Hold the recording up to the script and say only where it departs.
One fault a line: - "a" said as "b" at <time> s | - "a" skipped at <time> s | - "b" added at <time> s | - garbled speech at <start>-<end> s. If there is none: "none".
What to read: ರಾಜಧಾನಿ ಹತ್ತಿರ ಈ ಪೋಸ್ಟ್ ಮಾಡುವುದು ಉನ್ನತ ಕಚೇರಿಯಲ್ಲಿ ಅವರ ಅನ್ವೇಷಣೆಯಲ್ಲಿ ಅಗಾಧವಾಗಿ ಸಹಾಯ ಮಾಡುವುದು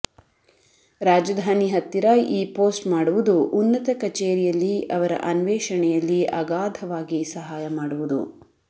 none